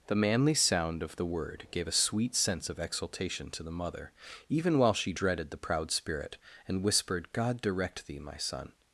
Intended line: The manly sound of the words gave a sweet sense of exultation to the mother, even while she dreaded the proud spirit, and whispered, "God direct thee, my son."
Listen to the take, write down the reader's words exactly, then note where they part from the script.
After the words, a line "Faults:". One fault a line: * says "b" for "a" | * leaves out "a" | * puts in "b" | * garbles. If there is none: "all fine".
The manly sound of the word gave a sweet sense of exultation to the mother, even while she dreaded the proud spirit, and whispered, "God direct thee, my son."
Faults:
* says "word" for "words"